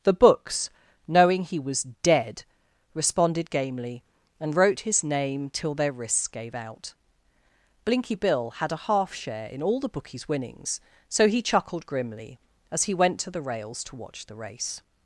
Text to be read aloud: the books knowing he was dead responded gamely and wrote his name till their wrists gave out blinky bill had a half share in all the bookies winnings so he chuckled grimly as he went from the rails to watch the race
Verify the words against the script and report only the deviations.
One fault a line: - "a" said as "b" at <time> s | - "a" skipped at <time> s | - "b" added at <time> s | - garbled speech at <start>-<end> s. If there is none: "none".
- "from" said as "to" at 13.2 s